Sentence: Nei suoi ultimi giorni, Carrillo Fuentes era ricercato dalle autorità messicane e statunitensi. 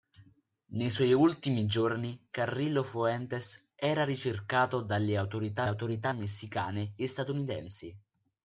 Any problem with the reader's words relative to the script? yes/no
yes